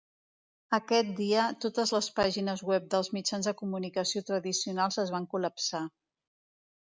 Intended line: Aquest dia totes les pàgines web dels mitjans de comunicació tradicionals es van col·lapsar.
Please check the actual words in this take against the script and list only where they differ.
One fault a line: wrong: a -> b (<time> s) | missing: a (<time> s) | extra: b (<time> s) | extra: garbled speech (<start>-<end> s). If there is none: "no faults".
no faults